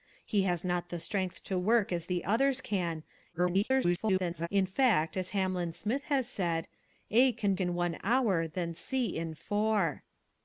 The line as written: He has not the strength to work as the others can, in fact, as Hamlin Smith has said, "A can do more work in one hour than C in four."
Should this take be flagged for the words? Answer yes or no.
yes